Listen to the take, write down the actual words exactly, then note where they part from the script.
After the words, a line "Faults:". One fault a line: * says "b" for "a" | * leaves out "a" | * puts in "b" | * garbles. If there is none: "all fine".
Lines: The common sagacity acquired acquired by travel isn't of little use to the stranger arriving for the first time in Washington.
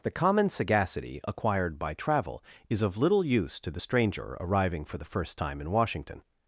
The common sagacity acquired by travel is of little use to the stranger arriving for the first time in Washington.
Faults:
* leaves out "acquired"
* says "is" for "isn't"